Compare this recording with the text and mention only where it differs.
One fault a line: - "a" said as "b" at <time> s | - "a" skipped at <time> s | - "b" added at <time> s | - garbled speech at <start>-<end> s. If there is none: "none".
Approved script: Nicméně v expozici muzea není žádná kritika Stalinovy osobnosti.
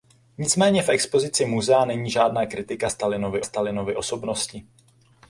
- "Stalinovy" added at 3.4 s